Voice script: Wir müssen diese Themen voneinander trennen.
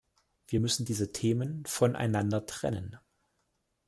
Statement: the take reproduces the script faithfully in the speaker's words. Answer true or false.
true